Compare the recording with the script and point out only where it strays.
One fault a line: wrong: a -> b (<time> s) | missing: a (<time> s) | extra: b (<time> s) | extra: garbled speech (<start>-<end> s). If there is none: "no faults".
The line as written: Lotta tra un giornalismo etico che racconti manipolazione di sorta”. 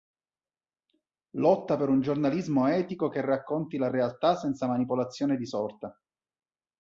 wrong: tra -> per (1.8 s)
extra: la realtà senza (3.8 s)